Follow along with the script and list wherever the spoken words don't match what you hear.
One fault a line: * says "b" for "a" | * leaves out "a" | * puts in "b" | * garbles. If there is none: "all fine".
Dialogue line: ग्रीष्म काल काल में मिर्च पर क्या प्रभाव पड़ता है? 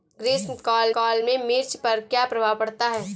all fine